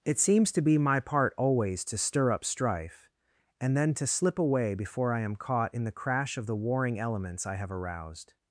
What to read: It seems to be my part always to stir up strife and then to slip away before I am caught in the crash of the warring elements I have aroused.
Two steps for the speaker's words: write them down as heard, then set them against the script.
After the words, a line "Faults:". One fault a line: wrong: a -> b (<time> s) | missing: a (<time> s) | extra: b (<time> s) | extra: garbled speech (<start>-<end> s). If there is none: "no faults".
It seems to be my part always to stir up strife and then to slip away before I am caught in the crash of the warring elements I have aroused.
Faults:
no faults